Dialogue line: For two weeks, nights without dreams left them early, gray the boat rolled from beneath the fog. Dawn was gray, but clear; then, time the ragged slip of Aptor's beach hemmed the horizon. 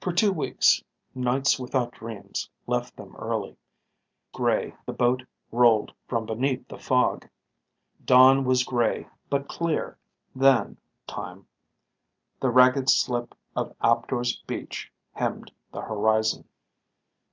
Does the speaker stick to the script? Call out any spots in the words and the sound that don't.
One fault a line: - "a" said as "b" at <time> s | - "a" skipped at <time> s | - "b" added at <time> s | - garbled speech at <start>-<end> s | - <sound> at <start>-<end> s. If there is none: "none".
none